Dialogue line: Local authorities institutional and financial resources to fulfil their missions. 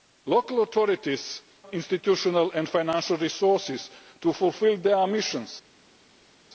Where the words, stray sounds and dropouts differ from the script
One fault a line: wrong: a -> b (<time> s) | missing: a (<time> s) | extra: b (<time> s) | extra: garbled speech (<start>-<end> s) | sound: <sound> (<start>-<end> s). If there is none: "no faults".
no faults